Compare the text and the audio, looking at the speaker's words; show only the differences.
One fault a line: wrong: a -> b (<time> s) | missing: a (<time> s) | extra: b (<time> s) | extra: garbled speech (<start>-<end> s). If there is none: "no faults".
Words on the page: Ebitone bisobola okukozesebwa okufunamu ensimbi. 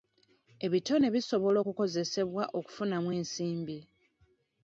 no faults